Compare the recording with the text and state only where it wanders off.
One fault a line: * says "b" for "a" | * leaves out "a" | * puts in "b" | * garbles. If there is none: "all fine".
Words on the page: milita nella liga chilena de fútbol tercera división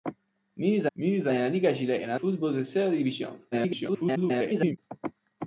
* puts in "milita"
* leaves out "de"
* garbles